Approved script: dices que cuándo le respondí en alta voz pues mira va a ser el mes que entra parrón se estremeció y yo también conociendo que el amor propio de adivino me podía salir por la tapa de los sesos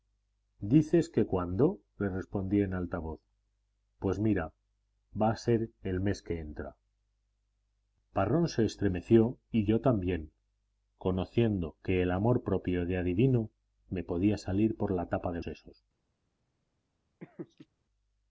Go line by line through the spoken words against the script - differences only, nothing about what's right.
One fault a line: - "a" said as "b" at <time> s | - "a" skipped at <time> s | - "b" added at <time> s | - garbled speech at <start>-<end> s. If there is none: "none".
- "los" skipped at 15.4 s